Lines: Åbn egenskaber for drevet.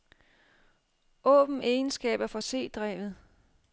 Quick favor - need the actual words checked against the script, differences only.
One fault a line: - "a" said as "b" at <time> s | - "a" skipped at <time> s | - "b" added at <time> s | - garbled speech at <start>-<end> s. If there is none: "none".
- "c" added at 2.4 s